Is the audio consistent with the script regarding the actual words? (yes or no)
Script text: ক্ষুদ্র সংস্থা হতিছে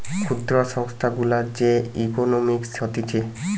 no